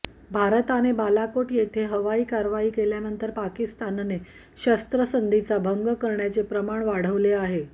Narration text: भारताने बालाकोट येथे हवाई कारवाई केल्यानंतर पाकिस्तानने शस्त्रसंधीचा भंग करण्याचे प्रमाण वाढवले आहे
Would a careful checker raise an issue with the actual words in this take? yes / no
no